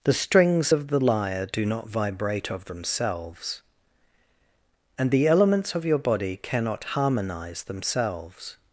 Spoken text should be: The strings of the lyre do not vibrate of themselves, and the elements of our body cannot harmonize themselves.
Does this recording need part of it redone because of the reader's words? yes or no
yes